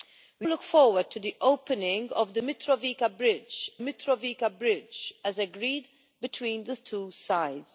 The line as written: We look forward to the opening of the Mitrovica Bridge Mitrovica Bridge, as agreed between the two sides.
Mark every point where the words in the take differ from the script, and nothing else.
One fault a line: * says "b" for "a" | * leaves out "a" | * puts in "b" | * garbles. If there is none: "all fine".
all fine